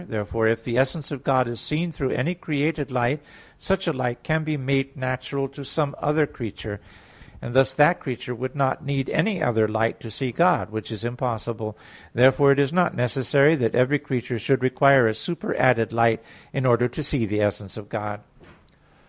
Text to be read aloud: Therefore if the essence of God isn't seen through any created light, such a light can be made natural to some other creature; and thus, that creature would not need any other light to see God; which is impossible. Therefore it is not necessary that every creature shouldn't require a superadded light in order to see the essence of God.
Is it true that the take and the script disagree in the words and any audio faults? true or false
true